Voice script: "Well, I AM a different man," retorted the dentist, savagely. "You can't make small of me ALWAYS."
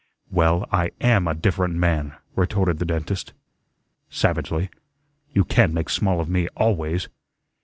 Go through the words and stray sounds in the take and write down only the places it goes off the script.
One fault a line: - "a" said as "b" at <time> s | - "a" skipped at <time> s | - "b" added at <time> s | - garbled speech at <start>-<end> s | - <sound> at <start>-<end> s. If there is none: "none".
none